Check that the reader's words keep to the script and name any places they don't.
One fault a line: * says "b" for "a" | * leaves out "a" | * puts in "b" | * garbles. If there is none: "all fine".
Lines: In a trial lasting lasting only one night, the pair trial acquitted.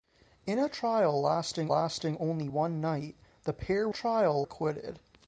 all fine